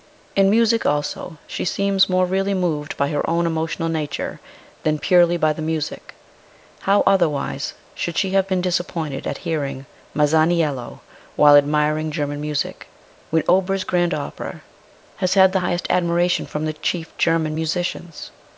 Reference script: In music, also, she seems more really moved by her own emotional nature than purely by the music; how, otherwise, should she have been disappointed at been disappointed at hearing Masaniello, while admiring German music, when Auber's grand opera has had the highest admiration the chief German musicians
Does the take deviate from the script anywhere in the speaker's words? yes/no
yes